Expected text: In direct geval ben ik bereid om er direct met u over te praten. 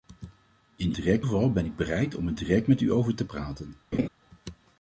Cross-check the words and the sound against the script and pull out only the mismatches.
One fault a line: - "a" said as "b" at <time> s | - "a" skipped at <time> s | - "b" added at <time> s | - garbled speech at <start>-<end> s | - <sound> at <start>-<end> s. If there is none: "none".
- laugh at 3.9-4.1 s